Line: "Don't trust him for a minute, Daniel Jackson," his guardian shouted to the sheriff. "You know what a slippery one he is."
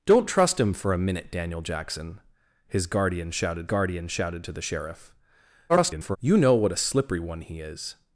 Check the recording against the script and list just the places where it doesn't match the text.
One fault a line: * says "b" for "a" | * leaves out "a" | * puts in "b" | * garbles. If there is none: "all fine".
* puts in "guardian shouted"
* garbles